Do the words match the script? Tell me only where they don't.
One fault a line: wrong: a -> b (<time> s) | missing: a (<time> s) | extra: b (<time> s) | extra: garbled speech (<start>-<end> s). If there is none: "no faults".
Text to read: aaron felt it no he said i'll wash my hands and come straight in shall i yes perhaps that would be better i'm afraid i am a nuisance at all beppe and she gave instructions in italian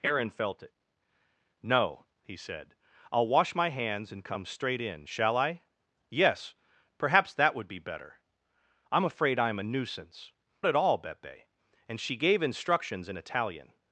no faults